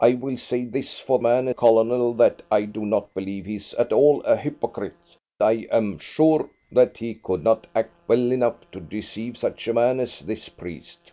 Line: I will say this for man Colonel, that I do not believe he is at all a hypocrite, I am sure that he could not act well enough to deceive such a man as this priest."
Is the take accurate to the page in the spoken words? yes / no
yes